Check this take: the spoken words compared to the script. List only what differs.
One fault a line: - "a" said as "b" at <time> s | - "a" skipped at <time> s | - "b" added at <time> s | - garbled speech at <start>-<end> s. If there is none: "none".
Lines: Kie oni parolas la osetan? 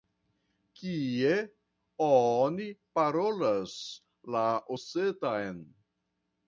none